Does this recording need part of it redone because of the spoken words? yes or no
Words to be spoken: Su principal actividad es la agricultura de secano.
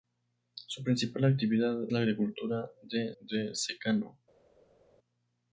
yes